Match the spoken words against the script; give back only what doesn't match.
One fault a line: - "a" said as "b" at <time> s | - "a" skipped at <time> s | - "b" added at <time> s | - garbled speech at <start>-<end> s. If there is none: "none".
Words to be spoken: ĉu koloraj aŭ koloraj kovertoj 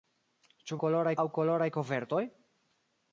none